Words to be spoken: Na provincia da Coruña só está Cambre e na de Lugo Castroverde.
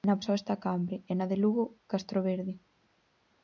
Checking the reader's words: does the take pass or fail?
fail